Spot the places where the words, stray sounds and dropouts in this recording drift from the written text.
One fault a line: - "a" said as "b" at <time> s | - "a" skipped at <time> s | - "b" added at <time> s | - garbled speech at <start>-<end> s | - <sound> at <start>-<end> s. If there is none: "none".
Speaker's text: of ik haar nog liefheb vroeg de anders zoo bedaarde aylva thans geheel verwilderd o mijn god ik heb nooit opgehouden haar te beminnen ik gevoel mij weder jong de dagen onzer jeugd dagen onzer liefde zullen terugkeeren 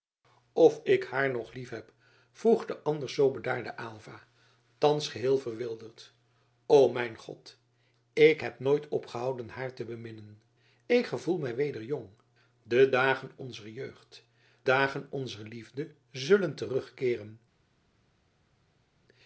none